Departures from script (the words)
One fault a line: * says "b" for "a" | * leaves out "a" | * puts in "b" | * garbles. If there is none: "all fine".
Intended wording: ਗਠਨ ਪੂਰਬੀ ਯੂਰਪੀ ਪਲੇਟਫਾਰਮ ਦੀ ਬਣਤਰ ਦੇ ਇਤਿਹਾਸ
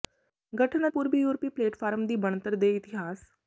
all fine